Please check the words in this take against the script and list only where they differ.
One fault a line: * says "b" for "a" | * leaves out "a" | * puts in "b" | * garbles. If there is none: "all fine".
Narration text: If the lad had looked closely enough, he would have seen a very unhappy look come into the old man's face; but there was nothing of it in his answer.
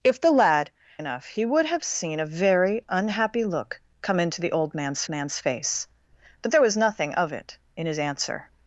* leaves out "had looked closely"
* puts in "man's"